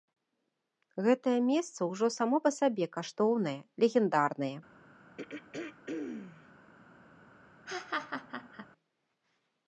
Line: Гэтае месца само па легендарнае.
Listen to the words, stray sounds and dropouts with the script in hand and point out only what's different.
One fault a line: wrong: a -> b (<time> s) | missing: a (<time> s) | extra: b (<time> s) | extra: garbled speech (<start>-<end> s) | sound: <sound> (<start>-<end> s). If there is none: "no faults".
extra: ўжо (1.9 s)
extra: сабе каштоўнае (2.6 s)
sound: throat clearing (5.2-6.5 s)
sound: laugh (7.7-8.7 s)